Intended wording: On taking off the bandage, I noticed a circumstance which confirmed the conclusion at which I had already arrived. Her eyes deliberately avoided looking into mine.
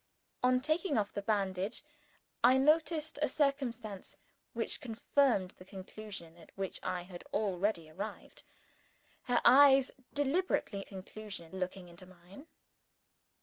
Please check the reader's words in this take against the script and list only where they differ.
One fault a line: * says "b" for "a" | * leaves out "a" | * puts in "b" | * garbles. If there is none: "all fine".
* says "conclusion" for "avoided"